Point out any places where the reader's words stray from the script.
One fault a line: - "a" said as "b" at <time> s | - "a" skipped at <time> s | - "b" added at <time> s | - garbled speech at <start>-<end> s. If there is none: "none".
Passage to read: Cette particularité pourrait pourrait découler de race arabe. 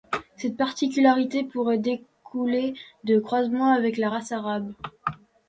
- "pourrait" skipped at 1.8 s
- "croisements avec la" added at 3.2 s